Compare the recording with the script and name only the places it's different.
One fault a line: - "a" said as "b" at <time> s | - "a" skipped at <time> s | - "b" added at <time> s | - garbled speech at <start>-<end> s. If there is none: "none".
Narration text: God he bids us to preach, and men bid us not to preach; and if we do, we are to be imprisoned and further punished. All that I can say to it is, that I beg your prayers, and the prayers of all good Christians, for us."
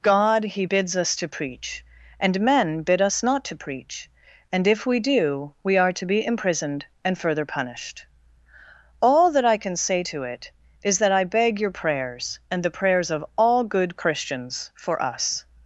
none